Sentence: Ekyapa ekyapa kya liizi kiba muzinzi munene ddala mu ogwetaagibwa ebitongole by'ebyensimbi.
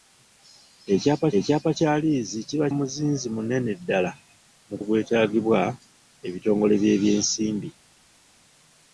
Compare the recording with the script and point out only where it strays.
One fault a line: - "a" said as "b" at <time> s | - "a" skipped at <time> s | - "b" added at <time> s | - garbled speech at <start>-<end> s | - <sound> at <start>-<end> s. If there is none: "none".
none